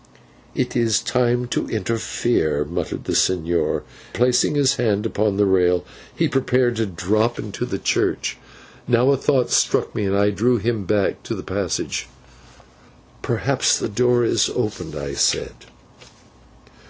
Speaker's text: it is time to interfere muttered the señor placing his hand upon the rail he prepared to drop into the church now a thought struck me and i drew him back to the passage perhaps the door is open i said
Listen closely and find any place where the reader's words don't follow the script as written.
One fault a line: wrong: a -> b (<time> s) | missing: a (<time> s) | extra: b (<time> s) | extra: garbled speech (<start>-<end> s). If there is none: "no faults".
no faults